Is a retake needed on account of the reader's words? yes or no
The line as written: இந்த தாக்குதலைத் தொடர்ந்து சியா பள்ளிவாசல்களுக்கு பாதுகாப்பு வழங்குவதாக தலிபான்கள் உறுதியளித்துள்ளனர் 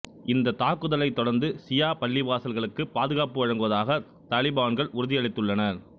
no